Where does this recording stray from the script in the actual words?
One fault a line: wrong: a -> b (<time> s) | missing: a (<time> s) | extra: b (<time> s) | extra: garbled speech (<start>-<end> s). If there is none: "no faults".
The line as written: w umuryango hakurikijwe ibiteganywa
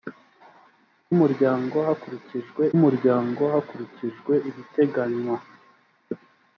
extra: umuryango hakurikijwe (2.8 s)